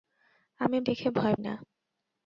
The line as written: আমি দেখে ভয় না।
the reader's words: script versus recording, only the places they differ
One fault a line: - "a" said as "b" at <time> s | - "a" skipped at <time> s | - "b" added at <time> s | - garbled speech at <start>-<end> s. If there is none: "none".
none